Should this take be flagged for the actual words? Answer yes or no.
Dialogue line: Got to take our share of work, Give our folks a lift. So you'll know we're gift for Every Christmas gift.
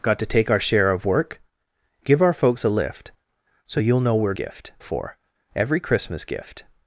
no